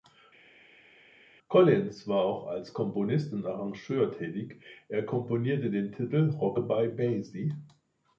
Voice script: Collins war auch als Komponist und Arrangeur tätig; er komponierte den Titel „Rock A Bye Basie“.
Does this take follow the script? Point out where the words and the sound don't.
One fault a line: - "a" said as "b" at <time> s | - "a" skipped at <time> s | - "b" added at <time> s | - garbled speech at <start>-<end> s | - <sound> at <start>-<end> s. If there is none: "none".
none